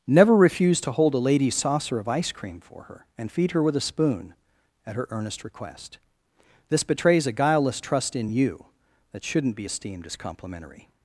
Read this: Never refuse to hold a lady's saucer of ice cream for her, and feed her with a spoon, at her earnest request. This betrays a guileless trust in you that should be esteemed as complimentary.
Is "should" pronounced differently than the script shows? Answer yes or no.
yes